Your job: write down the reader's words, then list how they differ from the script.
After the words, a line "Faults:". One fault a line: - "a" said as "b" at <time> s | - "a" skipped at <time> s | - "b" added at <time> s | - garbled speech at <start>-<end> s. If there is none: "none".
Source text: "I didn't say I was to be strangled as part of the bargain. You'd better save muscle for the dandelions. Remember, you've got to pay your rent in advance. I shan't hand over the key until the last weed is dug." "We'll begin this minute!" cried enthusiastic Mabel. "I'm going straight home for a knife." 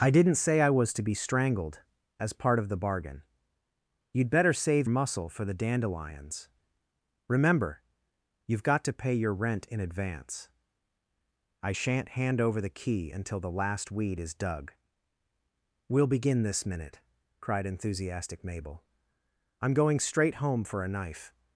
"I didn't say I was to be strangled as part of the bargain. You'd better save muscle for the dandelions. Remember, you've got to pay your rent in advance. I shan't hand over the key until the last weed is dug." "We'll begin this minute!" cried enthusiastic Mabel. "I'm going straight home for a knife."
Faults:
none